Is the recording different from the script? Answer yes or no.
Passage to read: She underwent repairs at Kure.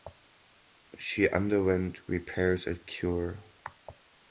no